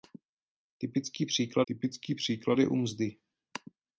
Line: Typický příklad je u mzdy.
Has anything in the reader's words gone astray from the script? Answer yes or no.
yes